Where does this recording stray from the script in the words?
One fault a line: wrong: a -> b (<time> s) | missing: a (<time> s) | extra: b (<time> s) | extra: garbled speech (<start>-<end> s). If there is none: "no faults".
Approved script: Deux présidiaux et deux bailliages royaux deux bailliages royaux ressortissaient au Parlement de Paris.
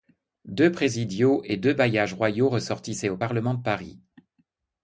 missing: deux bailliages royaux (2.5 s)